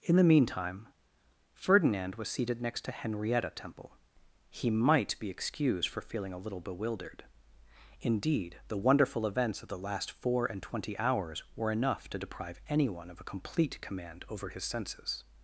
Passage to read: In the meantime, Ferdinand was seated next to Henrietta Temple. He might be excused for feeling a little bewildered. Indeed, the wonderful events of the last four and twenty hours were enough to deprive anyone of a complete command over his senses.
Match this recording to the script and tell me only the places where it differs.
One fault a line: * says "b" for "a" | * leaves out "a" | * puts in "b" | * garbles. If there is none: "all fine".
all fine